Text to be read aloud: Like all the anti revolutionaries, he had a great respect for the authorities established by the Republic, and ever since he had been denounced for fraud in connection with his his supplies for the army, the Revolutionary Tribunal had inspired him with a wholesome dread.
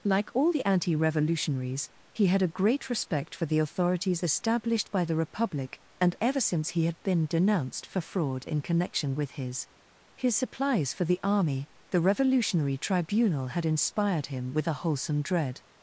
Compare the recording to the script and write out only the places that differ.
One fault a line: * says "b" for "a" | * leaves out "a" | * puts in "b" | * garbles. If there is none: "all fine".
all fine